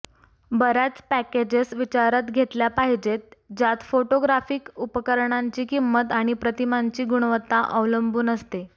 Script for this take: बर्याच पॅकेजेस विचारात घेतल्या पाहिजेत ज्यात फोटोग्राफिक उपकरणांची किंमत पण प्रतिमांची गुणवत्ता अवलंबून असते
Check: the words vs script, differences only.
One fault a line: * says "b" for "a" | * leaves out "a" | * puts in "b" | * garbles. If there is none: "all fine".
* says "आणि" for "पण"